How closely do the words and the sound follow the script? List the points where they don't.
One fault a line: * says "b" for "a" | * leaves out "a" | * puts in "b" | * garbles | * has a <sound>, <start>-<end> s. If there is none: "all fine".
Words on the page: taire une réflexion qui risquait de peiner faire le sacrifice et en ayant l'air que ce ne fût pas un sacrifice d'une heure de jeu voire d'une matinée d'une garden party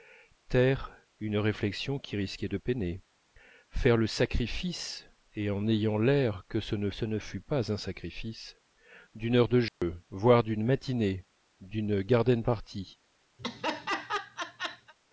* puts in "ce ne"
* has a dropout, 9.7-9.8 s
* has a laugh, 13.4-14.9 s